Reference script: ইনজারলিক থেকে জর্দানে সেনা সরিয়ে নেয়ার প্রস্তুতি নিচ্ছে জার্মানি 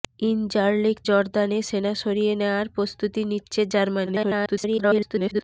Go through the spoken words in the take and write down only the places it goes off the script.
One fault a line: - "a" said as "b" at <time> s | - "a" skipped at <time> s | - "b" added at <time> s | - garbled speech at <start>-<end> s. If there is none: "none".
- "থেকে" skipped at 1.0 s
- garbled speech at 4.1-5.4 s